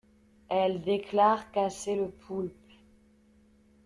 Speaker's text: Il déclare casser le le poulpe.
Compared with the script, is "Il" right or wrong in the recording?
wrong